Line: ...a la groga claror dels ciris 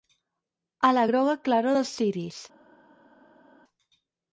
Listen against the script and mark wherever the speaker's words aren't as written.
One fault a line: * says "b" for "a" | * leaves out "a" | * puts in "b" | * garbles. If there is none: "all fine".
all fine